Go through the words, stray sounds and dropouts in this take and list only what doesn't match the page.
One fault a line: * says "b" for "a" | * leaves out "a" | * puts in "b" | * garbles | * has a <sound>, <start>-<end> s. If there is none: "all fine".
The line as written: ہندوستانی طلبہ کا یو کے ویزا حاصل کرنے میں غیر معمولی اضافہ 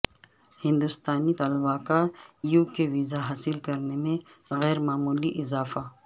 all fine